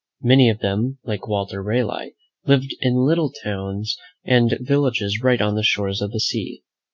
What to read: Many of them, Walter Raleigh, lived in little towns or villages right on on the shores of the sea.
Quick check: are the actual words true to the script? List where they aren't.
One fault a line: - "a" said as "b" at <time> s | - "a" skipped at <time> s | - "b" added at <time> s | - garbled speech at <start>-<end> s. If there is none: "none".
- "like" added at 1.1 s
- "or" said as "and" at 4.2 s
- "on" skipped at 5.5 s